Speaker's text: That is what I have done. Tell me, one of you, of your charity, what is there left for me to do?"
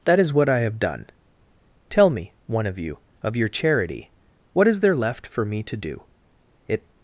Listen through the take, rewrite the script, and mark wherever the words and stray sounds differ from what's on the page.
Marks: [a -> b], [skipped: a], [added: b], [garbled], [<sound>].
That is what I have done. Tell me, one of you, of your charity, what is there left for me to do?" [added: It]